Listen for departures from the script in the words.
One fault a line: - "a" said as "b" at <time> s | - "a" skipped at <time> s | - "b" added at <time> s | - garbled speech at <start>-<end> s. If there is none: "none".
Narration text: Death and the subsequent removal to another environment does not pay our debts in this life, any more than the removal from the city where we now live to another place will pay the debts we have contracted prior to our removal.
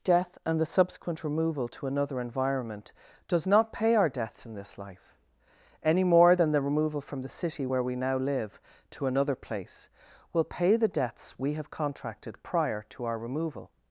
none